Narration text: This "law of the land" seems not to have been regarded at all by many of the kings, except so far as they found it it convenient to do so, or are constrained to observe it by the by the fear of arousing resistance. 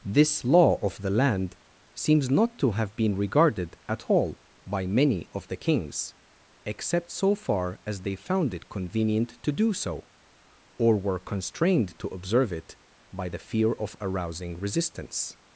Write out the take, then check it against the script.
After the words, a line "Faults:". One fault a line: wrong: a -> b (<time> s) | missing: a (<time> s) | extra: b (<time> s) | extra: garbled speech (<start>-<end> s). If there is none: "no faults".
This "law of the land" seems not to have been regarded at all by many of the kings, except so far as they found it convenient to do so, or were constrained to observe it by the fear of arousing resistance.
Faults:
missing: it (8.7 s)
wrong: are -> were (11.0 s)
missing: by the (13.4 s)